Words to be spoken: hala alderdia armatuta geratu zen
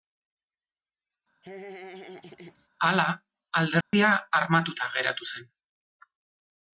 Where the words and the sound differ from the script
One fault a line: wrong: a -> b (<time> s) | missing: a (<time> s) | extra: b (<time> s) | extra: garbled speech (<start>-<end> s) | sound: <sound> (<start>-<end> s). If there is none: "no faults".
sound: laugh (1.4-2.7 s)
sound: dropout (3.8-3.9 s)